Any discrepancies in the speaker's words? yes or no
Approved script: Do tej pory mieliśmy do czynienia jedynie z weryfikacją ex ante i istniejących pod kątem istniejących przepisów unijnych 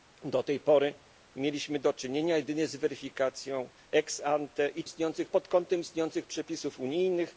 no